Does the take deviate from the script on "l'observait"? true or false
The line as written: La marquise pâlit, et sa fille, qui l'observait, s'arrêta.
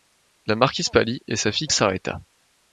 true